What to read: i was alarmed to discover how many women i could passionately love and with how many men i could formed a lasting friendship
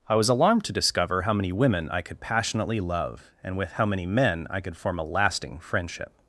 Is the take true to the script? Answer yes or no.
no